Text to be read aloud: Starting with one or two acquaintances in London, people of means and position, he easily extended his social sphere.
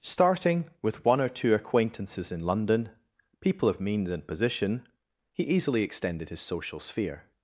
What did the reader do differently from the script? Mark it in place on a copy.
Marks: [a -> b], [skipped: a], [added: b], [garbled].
Starting with one or two acquaintances in London, people of means and position, he easily extended his social sphere.